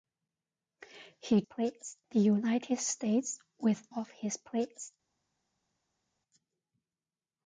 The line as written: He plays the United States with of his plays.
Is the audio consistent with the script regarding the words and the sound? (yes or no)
yes